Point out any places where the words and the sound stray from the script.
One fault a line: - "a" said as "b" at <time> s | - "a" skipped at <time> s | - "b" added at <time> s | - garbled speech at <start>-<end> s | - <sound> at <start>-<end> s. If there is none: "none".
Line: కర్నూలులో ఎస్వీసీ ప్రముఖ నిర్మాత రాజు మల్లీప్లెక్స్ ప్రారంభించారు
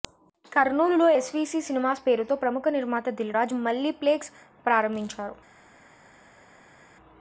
- "సినిమాస్ పేరుతో" added at 1.7 s
- "దిల్" added at 3.2 s